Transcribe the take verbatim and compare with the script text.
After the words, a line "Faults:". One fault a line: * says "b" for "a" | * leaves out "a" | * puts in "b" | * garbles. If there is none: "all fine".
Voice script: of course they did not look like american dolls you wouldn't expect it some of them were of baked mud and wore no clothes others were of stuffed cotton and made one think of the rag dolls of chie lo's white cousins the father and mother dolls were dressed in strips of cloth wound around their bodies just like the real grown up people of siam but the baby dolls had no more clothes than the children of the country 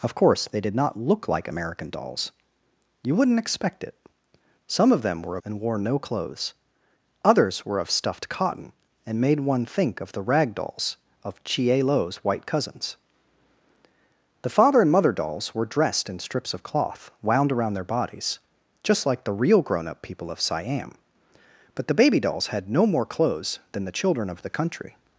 of course they did not look like american dolls you wouldn't expect it some of them were and wore no clothes others were of stuffed cotton and made one think of the rag dolls of chie lo's white cousins the father and mother dolls were dressed in strips of cloth wound around their bodies just like the real grown up people of siam but the baby dolls had no more clothes than the children of the country
Faults:
* leaves out "of baked mud"